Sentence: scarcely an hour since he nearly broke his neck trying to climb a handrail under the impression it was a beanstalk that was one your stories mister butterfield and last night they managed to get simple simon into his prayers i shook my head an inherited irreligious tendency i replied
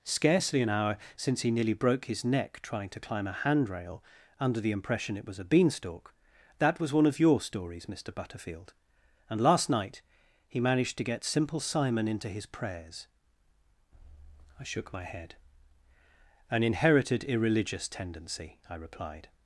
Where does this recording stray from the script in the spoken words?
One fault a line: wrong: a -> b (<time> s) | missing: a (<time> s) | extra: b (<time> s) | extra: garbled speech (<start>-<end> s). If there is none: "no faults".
extra: of (7.1 s)
wrong: they -> he (10.5 s)